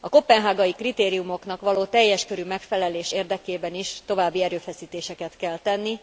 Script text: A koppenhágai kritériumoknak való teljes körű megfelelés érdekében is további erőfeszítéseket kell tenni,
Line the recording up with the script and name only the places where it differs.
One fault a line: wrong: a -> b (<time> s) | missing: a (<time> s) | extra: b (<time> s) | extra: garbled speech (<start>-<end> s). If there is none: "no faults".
no faults